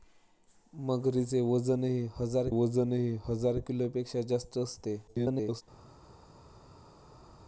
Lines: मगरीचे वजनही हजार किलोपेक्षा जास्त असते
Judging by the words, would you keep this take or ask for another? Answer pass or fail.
fail